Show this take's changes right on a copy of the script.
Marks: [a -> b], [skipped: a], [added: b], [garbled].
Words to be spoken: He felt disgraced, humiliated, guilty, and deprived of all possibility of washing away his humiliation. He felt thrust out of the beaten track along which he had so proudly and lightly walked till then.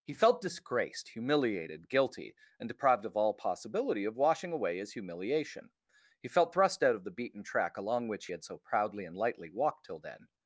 He felt disgraced, humiliated, guilty, and deprived of all possibility of washing away his humiliation. He felt thrust out of the beaten track along which [skipped: he] had so proudly and lightly walked till then.